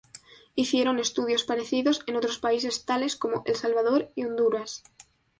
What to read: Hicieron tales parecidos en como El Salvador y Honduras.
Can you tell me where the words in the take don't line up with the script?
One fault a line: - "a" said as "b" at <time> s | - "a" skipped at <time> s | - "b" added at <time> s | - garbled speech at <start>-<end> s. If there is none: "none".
- "tales" said as "estudios" at 1.0 s
- "otros países tales" added at 2.1 s